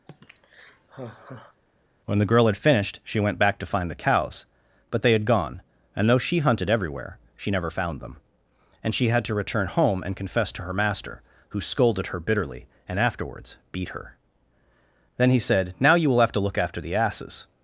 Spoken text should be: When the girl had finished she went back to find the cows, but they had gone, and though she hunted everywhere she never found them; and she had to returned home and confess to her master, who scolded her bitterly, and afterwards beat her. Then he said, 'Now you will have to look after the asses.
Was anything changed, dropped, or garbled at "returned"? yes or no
yes